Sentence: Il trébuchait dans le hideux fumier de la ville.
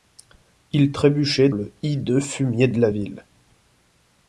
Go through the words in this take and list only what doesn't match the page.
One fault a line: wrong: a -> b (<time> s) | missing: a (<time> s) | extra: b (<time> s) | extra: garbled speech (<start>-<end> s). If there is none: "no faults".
missing: dans (1.5 s)